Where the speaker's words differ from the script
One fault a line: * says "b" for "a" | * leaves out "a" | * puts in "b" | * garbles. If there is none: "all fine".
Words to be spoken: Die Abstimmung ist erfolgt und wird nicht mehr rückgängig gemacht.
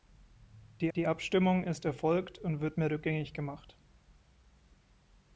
* puts in "die"
* leaves out "nicht"